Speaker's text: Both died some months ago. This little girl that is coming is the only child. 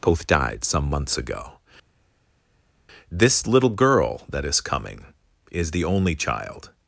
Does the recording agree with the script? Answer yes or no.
yes